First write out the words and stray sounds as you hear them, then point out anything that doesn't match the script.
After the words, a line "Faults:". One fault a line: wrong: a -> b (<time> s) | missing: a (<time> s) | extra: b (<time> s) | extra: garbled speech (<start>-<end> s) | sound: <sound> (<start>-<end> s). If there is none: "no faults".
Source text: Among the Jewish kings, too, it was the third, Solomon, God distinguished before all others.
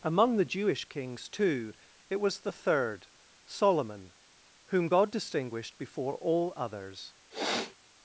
Among the Jewish kings, too, it was the third, Solomon, whom God distinguished before all others.
Faults:
extra: whom (4.7 s)
sound: sniff (7.3-7.8 s)